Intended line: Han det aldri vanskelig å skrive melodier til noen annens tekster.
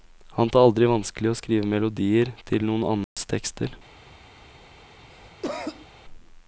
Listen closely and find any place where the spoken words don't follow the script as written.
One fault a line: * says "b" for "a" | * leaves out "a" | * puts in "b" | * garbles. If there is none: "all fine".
all fine